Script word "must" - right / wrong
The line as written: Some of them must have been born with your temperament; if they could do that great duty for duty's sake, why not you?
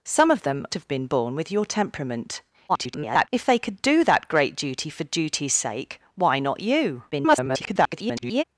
wrong